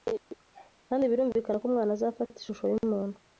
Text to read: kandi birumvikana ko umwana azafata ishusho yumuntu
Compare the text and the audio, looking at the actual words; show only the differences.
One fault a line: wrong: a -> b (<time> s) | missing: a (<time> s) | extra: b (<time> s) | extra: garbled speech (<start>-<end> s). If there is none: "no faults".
no faults